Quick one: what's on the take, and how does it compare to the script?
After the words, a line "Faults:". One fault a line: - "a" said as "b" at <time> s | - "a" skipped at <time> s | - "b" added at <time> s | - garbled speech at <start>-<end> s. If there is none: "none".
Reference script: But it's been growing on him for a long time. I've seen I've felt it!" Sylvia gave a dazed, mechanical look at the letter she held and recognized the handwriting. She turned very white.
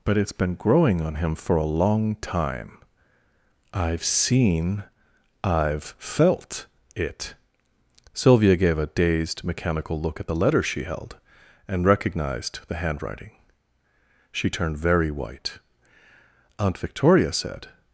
But it's been growing on him for a long time. I've seen I've felt it!" Sylvia gave a dazed, mechanical look at the letter she held and recognized the handwriting. She turned very white. Aunt Victoria said
Faults:
- "Aunt Victoria said" added at 16.6 s